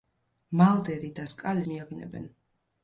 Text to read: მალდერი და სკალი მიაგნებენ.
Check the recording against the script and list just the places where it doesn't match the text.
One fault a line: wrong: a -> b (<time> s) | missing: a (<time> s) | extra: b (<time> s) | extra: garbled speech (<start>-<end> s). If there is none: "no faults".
no faults